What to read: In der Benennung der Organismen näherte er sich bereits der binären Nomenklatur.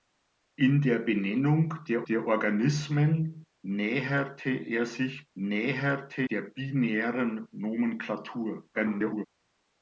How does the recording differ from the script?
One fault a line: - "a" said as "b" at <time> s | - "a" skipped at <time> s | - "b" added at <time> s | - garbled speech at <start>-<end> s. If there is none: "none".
- "der" added at 2.1 s
- "bereits" said as "näherte" at 5.4 s
- garbled speech at 8.7-9.3 s